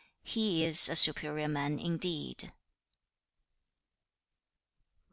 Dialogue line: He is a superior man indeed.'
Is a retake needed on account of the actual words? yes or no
no